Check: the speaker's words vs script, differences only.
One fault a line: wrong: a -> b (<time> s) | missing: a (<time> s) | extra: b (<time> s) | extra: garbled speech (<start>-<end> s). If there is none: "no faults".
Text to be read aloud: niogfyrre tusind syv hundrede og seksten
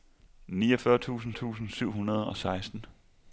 extra: tusind (1.3 s)